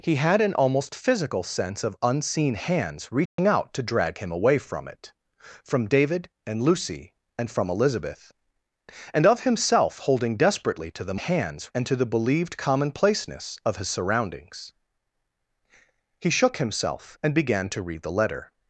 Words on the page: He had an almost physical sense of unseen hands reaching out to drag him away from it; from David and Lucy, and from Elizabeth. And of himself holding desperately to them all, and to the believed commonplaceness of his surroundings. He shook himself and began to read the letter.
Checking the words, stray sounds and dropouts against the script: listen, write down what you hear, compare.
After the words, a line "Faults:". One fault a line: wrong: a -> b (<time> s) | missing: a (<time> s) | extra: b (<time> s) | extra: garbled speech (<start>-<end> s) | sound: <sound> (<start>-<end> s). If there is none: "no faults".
He had an almost physical sense of unseen hands reaching out to drag him away from it; from David and Lucy, and from Elizabeth. And of himself holding desperately to them hands, and to the believed commonplaceness of his surroundings. He shook himself and began to read the letter.
Faults:
sound: dropout (3.3-3.4 s)
wrong: all -> hands (11.2 s)